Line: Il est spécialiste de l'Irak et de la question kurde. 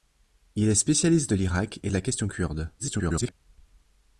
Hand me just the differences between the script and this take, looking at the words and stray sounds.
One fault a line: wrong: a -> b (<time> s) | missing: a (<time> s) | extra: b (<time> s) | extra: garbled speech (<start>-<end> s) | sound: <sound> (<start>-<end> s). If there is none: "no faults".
extra: garbled speech (2.8-3.3 s)